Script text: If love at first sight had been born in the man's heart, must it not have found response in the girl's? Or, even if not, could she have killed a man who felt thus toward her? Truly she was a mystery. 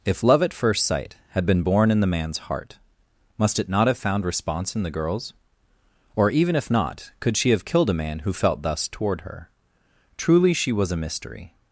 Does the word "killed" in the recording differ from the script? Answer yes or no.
no